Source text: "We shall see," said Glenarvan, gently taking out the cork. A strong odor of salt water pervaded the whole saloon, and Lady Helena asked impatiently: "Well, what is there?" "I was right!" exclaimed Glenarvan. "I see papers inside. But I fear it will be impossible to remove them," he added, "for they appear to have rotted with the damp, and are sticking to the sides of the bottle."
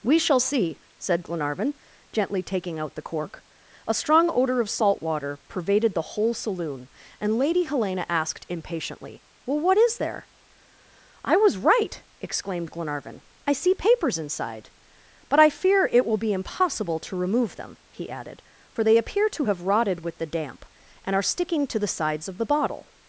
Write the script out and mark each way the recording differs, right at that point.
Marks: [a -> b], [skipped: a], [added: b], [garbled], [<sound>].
"We shall see," said Glenarvan, gently taking out the cork. A strong odor of salt water pervaded the whole saloon, and Lady Helena asked impatiently: "Well, what is there?" "I was right!" exclaimed Glenarvan. "I see papers inside. But I fear it will be impossible to remove them," he added, "for they appear to have rotted with the damp, and are sticking to the sides of the bottle."